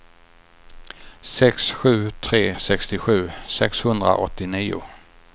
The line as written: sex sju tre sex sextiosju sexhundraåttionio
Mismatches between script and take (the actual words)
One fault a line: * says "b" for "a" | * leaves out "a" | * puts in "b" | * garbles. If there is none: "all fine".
* leaves out "sex"